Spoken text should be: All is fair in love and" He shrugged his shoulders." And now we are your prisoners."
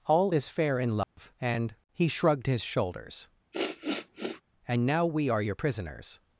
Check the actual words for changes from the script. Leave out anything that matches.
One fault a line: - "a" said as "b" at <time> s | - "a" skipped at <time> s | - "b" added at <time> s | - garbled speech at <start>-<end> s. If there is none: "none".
none